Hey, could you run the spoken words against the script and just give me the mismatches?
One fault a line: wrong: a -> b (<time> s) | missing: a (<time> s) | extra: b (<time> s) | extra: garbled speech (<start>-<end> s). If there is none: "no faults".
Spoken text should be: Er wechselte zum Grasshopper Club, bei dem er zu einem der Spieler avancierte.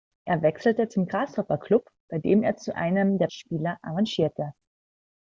no faults